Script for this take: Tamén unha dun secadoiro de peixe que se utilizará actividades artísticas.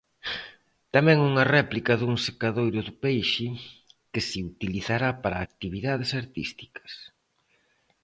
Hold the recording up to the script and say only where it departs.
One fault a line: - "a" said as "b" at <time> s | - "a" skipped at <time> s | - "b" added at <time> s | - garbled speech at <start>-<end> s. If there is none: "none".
- "réplica" added at 1.6 s
- "para" added at 5.2 s